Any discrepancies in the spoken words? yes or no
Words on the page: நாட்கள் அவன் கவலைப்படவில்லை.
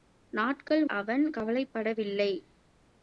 no